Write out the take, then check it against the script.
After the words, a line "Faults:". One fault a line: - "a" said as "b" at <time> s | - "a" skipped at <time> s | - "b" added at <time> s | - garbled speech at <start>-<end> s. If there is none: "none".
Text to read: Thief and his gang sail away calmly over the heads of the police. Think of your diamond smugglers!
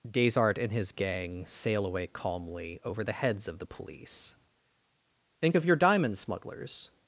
Desart and his gang sail away calmly over the heads of the police. Think of your diamond smugglers!
Faults:
- "Thief" said as "Desart" at 0.1 s